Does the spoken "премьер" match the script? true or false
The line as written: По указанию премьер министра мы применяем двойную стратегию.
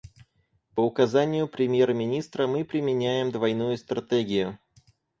true